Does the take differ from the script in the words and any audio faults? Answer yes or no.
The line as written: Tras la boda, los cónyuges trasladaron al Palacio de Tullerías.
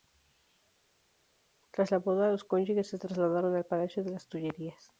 yes